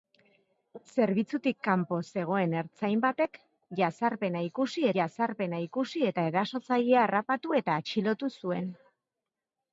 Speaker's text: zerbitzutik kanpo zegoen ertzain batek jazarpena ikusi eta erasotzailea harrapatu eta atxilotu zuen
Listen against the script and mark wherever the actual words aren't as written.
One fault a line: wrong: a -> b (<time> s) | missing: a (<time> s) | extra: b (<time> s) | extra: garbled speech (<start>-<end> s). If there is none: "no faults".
extra: jazarpena ikusi (5.0 s)